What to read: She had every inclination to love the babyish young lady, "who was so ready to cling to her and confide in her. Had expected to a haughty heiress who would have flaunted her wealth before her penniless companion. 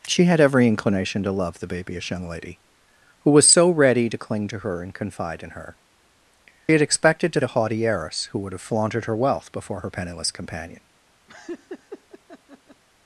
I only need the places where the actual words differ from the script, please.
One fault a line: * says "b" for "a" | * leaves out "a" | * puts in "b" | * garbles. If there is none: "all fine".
all fine